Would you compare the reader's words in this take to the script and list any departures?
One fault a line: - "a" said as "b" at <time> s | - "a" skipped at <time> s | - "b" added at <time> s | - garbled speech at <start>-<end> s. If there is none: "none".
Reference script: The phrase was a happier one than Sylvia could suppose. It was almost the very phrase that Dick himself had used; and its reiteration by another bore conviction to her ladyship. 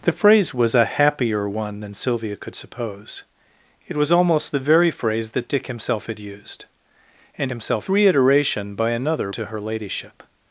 - "its" said as "himself" at 7.5 s
- "bore conviction" skipped at 9.3 s